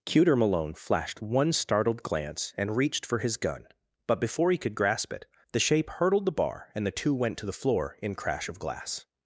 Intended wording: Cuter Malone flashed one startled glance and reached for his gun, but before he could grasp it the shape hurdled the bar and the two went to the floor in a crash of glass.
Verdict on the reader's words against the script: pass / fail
fail